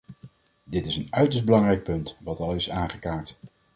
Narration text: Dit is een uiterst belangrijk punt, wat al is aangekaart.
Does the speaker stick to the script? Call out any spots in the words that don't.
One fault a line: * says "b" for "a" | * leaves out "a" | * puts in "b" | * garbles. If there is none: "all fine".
all fine